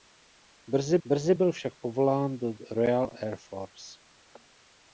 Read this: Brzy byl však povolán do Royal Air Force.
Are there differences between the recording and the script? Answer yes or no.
yes